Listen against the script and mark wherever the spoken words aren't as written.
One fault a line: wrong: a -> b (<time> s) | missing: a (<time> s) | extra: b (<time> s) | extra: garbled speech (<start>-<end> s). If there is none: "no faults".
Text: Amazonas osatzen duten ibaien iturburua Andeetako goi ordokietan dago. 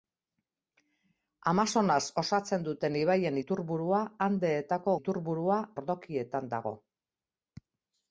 wrong: goi -> iturburua (5.0 s)